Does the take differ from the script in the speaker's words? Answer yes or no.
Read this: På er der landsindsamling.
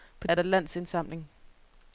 no